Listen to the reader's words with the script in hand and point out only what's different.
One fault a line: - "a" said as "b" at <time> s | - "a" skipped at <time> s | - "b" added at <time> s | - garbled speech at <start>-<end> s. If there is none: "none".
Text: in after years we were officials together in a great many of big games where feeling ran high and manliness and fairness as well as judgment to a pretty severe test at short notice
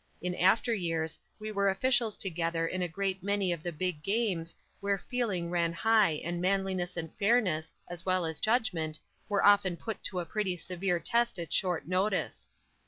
- "the" added at 3.6 s
- "were often put" added at 9.3 s